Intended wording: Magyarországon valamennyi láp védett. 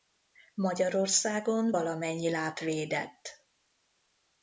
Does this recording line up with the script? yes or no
yes